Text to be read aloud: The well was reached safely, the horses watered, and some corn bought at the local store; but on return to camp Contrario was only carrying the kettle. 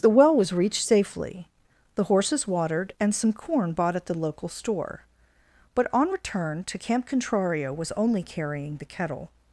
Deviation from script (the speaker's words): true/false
false